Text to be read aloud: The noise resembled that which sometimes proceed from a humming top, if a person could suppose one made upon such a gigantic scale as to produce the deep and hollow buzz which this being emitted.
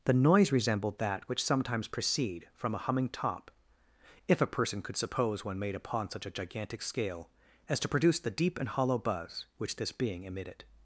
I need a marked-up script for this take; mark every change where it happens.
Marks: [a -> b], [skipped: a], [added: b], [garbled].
The noise resembled that which sometimes proceed from a humming top, if a person could suppose one made upon such a gigantic scale as to produce the deep and hollow buzz which this being emitted.